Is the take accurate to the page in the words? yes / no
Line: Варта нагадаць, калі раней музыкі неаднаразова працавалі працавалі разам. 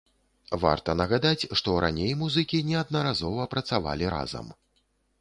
no